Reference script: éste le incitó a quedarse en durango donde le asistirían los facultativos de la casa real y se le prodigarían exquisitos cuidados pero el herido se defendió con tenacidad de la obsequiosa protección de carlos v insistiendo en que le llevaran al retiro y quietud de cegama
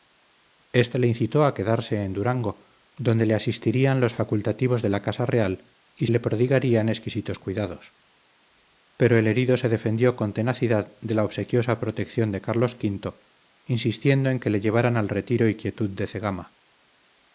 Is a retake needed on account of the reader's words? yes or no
yes